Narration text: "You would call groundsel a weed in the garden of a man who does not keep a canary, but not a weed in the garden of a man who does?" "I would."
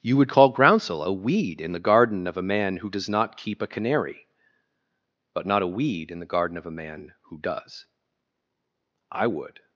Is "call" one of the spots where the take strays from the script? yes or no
no